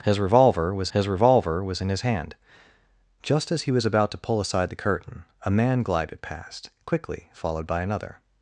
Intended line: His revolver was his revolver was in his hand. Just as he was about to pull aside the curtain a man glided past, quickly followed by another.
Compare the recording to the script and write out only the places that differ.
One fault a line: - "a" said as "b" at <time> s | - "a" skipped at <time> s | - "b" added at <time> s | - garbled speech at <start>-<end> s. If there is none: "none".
none